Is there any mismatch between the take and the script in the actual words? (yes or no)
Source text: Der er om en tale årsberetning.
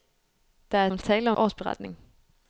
no